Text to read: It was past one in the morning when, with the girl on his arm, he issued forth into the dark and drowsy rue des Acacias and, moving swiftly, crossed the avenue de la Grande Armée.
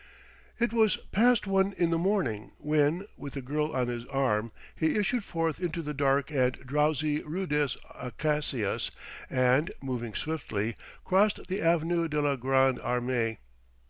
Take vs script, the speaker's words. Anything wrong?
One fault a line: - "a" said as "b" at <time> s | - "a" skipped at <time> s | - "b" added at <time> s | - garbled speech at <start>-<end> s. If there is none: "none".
none